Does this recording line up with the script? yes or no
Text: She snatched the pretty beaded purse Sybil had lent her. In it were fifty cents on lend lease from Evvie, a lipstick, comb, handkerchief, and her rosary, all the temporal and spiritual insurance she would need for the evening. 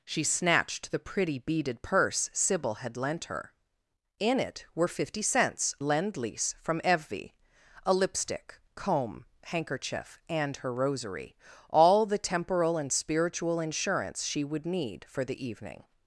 no